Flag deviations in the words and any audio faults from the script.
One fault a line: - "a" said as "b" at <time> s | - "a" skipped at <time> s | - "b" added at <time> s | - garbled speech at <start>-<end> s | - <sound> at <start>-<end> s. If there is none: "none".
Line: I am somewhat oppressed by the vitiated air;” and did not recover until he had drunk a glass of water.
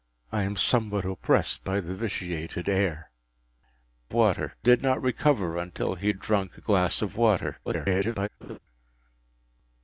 - "and" said as "water" at 4.1 s
- garbled speech at 7.6-8.3 s
- laugh at 8.4-8.6 s